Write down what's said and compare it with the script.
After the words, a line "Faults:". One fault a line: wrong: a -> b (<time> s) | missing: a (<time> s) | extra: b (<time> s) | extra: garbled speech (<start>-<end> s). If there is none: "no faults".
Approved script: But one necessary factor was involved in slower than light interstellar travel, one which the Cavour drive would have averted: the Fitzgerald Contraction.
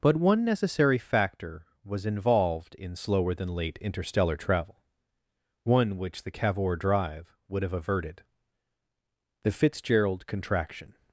But one necessary factor was involved in slower than late interstellar travel, one which the Cavour drive would have averted: the Fitzgerald Contraction.
Faults:
wrong: light -> late (3.5 s)